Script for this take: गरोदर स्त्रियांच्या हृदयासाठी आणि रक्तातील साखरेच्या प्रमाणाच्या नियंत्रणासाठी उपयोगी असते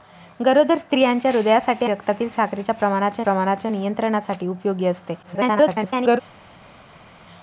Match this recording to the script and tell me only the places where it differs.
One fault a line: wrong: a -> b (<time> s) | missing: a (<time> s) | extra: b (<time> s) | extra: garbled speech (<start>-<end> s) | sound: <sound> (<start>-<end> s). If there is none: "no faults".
missing: आणि (1.9 s)
extra: प्रमाणाच्या (3.2 s)
extra: garbled speech (5.2-6.2 s)